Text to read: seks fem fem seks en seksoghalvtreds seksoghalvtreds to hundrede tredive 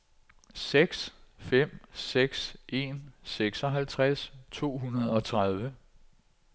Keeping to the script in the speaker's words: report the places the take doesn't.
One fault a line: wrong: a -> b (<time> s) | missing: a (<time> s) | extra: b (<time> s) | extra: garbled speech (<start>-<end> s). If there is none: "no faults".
missing: fem (1.8 s)
missing: seksoghalvtreds (4.3 s)
extra: og (5.1 s)